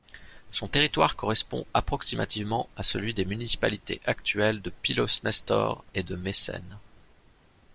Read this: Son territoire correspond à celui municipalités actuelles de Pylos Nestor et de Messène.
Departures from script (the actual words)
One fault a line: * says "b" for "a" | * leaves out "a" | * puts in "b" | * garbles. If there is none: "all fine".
* puts in "approximativement"
* puts in "des"